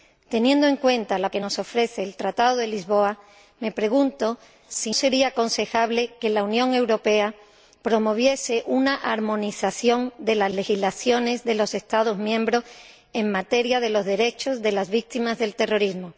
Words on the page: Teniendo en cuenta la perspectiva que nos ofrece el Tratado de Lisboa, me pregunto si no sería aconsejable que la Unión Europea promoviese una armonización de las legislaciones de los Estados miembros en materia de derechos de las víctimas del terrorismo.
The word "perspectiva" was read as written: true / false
false